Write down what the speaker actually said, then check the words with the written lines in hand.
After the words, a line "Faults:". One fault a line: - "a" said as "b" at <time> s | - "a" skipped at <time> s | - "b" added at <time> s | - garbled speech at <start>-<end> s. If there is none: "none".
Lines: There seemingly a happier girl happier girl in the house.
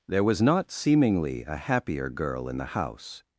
There was not seemingly a happier girl in the house.
Faults:
- "was not" added at 0.2 s
- "happier girl" skipped at 2.5 s